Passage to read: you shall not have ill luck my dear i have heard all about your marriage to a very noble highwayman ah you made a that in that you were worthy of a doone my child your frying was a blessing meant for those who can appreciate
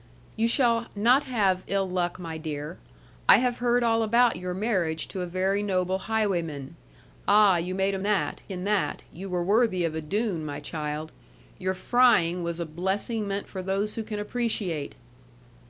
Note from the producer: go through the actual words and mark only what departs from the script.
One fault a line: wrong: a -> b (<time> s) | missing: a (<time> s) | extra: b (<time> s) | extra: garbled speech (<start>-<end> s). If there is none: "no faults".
no faults